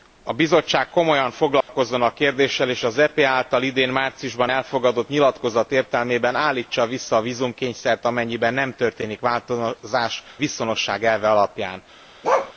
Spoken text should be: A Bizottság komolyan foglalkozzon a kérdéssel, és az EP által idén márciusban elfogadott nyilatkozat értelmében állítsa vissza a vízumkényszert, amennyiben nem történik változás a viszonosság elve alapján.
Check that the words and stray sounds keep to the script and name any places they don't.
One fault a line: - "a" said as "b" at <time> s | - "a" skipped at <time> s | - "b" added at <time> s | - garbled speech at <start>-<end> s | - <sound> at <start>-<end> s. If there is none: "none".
- dropout at 1.6-1.7 s
- "a" skipped at 10.2 s
- bark at 12.2-12.5 s